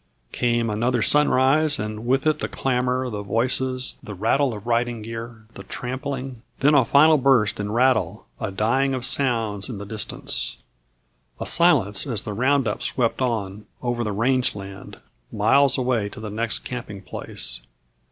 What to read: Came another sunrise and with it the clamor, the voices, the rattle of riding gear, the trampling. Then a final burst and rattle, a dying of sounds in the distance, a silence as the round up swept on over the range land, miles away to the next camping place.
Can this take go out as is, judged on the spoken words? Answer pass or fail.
pass